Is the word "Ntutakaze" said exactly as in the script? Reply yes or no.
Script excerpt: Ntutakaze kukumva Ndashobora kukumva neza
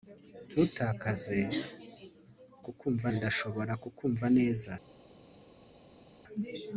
yes